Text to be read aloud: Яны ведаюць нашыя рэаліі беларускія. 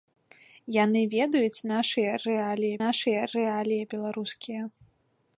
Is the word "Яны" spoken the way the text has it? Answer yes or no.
yes